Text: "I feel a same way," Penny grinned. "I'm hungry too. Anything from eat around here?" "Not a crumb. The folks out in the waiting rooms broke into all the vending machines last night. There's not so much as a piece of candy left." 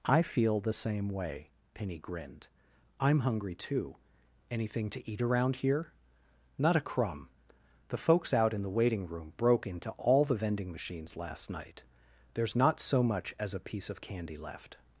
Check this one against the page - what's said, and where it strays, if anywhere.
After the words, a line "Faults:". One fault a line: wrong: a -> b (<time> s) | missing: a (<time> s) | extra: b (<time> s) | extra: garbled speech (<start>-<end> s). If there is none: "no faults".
"I feel the same way," Penny grinned. "I'm hungry too. Anything to eat around here?" "Not a crumb. The folks out in the waiting room broke into all the vending machines last night. There's not so much as a piece of candy left."
Faults:
wrong: a -> the (0.6 s)
wrong: from -> to (4.9 s)
wrong: rooms -> room (9.1 s)